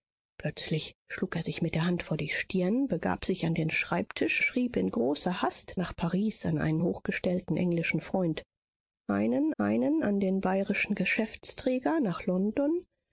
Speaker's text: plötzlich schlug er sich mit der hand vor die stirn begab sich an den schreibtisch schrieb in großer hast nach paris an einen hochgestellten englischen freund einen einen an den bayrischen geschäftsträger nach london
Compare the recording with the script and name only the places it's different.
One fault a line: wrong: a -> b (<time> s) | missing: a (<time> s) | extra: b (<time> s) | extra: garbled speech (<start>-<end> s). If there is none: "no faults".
no faults